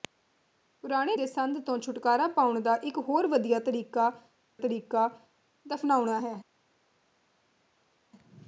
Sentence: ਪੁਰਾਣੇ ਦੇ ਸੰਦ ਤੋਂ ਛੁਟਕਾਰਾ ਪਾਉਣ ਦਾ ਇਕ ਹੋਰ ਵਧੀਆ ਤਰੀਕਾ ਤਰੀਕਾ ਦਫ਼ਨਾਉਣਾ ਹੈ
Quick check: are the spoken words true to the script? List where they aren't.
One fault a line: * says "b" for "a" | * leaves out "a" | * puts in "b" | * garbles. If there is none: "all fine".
all fine